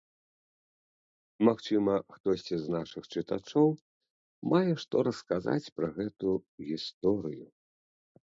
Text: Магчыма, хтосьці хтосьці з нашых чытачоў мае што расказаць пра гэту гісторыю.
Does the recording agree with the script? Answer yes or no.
no